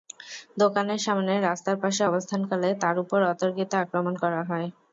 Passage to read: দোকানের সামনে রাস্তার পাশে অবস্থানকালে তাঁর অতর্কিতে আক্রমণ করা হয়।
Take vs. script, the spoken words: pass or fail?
fail